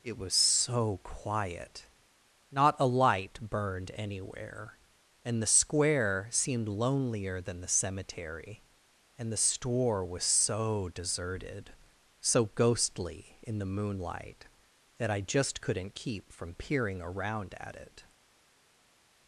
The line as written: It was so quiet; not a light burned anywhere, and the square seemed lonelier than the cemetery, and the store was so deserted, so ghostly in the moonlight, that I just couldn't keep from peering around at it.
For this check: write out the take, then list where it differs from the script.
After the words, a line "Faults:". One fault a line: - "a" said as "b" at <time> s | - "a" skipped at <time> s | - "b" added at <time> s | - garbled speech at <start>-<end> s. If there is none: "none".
It was so quiet; not a light burned anywhere, and the square seemed lonelier than the cemetery, and the store was so deserted, so ghostly in the moonlight, that I just couldn't keep from peering around at it.
Faults:
none